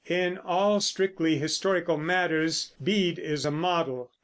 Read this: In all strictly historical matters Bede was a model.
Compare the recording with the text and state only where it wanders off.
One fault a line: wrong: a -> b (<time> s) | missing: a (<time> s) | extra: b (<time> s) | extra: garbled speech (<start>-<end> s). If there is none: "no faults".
wrong: was -> is (3.2 s)